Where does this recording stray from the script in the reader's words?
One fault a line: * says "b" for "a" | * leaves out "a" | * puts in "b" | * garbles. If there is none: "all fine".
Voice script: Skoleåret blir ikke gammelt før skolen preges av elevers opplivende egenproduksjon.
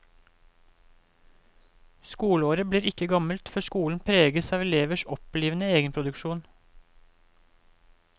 all fine